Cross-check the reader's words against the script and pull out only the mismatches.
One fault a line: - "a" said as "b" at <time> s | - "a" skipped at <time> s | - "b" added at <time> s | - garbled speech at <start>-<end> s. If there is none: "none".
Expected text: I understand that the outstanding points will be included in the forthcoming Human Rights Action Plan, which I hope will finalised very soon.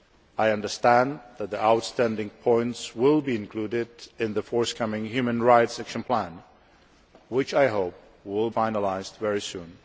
none